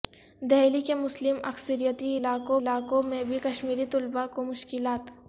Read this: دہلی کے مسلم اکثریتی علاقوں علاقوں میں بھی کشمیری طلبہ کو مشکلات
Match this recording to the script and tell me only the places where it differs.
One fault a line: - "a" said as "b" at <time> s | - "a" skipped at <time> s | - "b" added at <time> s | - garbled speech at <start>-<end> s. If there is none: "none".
none